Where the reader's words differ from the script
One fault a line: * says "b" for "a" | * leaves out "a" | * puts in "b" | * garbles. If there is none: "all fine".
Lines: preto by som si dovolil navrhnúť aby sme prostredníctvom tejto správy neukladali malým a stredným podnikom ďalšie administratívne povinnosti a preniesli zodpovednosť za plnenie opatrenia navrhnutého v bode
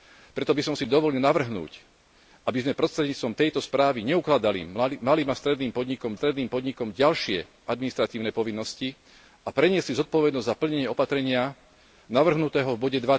* puts in "stredným podnikom"